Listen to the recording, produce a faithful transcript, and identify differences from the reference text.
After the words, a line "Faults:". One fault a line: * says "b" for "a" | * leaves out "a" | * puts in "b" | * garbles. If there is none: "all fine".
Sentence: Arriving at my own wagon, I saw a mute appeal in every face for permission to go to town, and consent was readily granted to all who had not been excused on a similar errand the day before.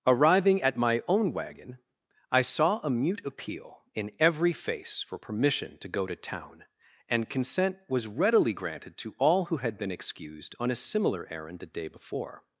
Arriving at my own wagon, I saw a mute appeal in every face for permission to go to town, and consent was readily granted to all who had been excused on a similar errand the day before.
Faults:
* leaves out "not"